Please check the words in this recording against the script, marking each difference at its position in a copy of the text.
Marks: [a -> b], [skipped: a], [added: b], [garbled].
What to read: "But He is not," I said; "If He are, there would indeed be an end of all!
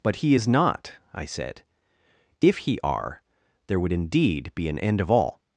"But He is not," I said; "If He are, there would indeed be an end of all!